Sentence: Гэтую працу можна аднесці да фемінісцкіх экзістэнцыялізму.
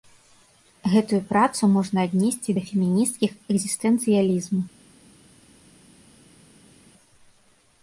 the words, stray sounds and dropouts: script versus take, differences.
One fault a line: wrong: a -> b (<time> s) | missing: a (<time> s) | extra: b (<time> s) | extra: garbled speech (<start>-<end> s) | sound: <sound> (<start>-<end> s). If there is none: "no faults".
no faults